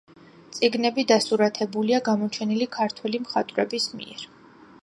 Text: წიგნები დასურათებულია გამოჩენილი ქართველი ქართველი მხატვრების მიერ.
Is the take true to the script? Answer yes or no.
no